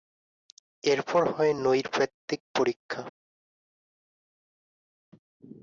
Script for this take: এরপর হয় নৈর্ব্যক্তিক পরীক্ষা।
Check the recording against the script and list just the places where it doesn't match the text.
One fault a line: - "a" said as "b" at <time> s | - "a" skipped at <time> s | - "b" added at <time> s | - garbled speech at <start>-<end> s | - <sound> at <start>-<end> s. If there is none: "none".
none